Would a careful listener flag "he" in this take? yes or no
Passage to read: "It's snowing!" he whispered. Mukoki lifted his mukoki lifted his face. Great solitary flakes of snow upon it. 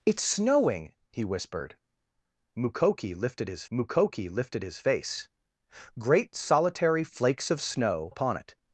no